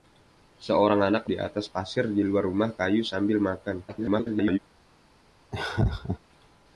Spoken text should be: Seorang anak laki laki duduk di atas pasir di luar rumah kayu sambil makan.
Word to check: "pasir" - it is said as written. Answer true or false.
true